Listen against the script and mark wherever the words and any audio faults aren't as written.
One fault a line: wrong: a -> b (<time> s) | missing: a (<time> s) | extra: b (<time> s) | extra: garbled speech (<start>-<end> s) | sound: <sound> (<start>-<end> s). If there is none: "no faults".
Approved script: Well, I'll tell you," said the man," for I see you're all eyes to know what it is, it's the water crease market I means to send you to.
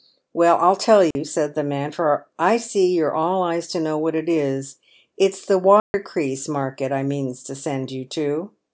sound: dropout (1.1-1.2 s)
sound: dropout (5.8-5.9 s)